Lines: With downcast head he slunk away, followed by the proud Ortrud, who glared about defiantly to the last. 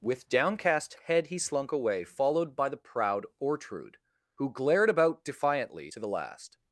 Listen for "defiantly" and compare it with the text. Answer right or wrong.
right